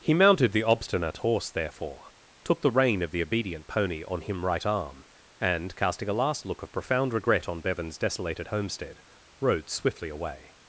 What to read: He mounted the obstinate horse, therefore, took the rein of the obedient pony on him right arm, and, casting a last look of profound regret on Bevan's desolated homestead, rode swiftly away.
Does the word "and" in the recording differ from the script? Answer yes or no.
no